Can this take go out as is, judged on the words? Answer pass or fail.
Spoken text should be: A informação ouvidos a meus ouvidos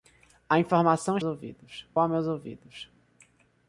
pass